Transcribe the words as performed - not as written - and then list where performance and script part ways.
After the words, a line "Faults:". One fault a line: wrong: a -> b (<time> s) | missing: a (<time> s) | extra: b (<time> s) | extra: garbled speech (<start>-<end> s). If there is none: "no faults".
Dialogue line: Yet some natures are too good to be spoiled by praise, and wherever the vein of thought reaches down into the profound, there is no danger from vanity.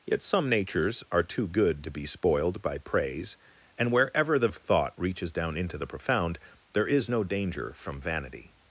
Yet some natures are too good to be spoiled by praise, and wherever the of thought reaches down into the profound, there is no danger from vanity.
Faults:
missing: vein (4.5 s)